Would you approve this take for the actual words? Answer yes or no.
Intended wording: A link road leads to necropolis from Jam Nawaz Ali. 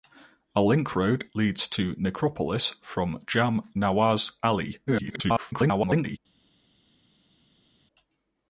no